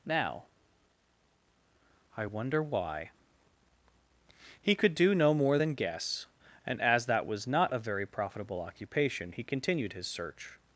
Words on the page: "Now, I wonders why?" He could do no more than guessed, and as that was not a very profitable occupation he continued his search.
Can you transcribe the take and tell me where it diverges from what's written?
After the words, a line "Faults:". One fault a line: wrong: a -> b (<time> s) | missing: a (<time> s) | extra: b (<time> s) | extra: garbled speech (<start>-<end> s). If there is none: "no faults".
"Now, I wonder why?" He could do no more than guess, and as that was not a very profitable occupation he continued his search.
Faults:
wrong: wonders -> wonder (2.2 s)
wrong: guessed -> guess (5.7 s)